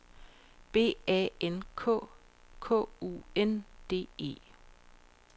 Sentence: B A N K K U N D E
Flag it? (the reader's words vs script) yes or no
no